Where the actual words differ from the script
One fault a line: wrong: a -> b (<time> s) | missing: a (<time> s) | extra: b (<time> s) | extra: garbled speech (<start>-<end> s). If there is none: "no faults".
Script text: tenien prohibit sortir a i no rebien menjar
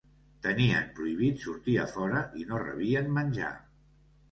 extra: fora (1.9 s)